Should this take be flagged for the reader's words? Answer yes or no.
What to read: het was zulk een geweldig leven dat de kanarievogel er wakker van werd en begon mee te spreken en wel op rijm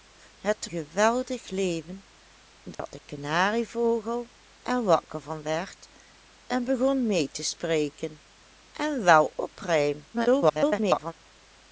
yes